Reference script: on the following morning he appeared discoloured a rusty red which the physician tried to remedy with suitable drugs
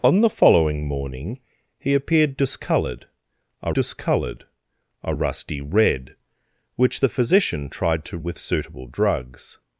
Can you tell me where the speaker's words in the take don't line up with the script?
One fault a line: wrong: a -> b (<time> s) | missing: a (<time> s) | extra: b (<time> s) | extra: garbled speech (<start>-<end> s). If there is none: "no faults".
extra: discoloured a (3.7 s)
missing: remedy (8.2 s)